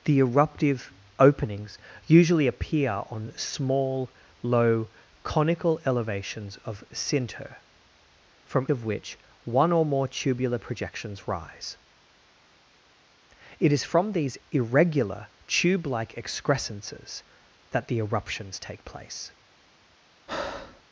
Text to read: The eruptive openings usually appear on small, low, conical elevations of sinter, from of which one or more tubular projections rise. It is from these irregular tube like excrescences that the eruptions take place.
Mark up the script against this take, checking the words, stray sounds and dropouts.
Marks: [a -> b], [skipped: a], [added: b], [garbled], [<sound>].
The eruptive openings usually appear on small, low, conical elevations of sinter, from of which one or more tubular projections rise. It is from these irregular tube like excrescences that the eruptions take place. [breath]